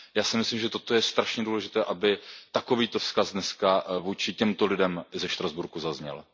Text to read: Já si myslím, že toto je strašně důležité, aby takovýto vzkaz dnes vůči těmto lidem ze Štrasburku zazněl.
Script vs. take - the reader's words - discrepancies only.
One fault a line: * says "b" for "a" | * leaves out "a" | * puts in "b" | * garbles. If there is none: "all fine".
all fine